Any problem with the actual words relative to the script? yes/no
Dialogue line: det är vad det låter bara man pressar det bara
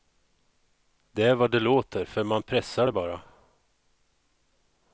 yes